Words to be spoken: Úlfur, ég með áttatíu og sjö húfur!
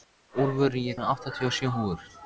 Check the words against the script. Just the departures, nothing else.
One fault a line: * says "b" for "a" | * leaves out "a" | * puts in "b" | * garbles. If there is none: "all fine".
all fine